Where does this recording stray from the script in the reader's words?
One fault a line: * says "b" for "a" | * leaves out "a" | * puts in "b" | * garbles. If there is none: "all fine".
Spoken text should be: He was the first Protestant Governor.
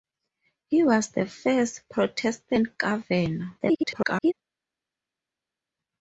* garbles